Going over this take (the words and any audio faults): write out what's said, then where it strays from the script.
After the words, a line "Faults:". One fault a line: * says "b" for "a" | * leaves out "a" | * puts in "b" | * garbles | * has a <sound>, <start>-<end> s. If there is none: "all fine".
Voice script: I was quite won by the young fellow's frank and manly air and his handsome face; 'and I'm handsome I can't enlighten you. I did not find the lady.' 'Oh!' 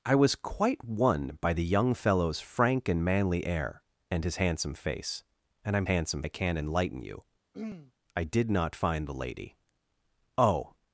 I was quite won by the young fellow's frank and manly air and his handsome face; 'and I'm handsome I can't enlighten you. I did not find the lady.' 'Oh!'
Faults:
* has a throat clearing, 7.5-7.9 s